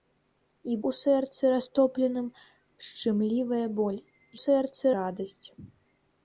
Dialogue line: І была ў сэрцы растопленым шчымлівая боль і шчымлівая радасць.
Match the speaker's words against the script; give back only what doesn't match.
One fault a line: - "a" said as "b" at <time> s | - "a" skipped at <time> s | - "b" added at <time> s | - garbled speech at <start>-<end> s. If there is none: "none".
- "была" skipped at 0.8 s
- "шчымлівая" said as "сэрцы" at 4.4 s